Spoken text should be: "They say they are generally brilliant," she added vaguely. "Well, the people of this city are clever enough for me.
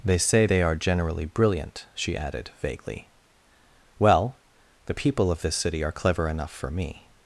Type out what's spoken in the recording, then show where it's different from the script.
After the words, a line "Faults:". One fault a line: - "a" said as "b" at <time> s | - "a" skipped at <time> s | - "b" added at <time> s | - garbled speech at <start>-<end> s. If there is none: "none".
"They say they are generally brilliant," she added vaguely. "Well, the people of this city are clever enough for me.
Faults:
none